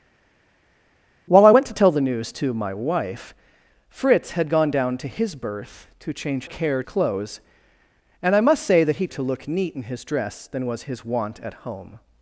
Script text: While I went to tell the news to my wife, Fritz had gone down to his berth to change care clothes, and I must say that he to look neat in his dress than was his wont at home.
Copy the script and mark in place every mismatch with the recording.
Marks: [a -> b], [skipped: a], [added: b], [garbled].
While I went to tell the news to my wife, Fritz had gone down to his berth to change care clothes, and I must say that he to look neat in his dress than was his wont at home.